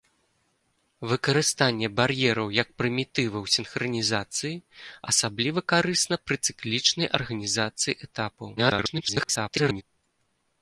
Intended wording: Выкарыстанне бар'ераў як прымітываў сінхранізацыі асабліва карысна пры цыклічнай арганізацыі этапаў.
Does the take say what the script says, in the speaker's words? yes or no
no